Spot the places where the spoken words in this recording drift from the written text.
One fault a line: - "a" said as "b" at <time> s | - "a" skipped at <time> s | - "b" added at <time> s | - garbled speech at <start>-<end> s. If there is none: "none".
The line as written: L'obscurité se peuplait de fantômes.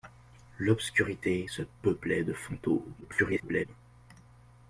- garbled speech at 3.0-3.7 s